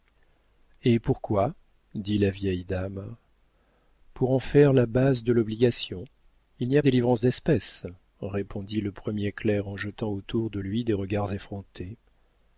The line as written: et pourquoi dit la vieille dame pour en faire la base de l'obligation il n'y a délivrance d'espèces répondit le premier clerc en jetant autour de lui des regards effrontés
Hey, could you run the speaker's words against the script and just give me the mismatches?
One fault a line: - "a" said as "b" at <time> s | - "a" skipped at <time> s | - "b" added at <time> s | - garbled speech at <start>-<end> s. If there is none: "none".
none